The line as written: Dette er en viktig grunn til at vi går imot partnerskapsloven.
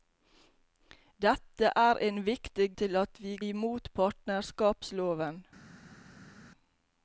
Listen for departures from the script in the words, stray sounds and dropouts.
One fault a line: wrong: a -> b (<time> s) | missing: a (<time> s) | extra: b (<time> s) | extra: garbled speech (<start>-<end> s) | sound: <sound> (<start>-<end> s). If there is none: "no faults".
missing: grunn (2.7 s)
missing: går (3.4 s)